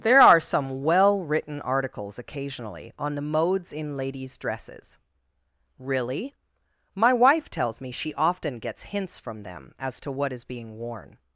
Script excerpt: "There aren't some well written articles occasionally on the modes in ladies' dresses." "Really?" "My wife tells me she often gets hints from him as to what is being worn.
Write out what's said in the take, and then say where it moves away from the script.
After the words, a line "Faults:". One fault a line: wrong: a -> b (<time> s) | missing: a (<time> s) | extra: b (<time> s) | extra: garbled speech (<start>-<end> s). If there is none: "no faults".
"There are some well written articles occasionally on the modes in ladies' dresses." "Really?" "My wife tells me she often gets hints from them as to what is being worn.
Faults:
wrong: aren't -> are (0.2 s)
wrong: him -> them (9.4 s)